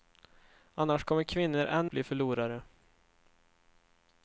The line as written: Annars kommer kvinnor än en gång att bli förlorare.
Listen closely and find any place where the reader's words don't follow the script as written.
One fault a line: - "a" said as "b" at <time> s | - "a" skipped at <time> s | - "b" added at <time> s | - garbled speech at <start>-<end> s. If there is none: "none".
- "en gång att" skipped at 1.9 s